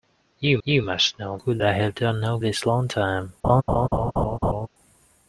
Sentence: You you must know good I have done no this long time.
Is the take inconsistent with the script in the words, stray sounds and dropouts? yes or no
yes